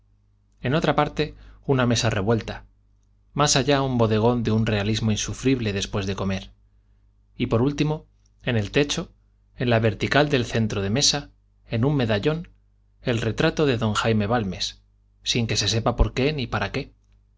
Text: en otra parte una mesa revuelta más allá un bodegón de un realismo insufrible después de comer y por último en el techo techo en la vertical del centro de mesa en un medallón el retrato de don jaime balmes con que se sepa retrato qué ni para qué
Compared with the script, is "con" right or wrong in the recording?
wrong